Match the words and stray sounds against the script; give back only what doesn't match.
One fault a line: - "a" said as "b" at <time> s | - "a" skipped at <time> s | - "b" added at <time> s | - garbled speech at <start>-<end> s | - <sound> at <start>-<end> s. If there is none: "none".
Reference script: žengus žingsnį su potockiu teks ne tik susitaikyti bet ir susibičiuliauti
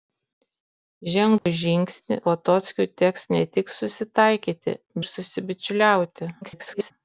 - dropout at 1.4-1.5 s
- "su" skipped at 2.2 s
- "bet" skipped at 4.8 s
- garbled speech at 6.4-6.9 s